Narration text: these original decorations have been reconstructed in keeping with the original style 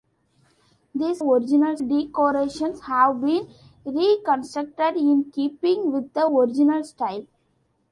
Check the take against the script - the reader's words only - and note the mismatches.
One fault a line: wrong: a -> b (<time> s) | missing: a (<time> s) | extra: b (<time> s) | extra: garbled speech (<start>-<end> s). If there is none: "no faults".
no faults